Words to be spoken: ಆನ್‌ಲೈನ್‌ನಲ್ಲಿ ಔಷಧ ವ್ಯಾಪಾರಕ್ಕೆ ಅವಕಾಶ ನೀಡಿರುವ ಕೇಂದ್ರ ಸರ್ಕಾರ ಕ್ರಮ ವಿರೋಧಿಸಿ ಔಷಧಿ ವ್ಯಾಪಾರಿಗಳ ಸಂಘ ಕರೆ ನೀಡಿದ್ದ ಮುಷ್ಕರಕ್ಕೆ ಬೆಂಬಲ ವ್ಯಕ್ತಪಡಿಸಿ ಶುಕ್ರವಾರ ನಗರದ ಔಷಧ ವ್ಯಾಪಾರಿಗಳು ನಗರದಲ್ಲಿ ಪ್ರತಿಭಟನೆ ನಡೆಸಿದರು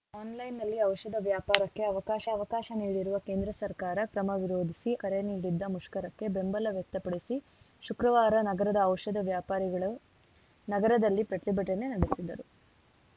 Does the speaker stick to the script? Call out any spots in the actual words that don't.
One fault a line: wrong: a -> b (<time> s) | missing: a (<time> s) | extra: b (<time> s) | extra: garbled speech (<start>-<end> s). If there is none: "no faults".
extra: ಅವಕಾಶ (2.3 s)
missing: ಔಷಧಿ ವ್ಯಾಪಾರಿಗಳ ಸಂಘ (4.9 s)